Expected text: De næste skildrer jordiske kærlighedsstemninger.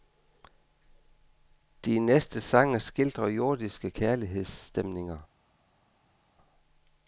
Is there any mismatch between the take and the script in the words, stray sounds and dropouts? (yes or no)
yes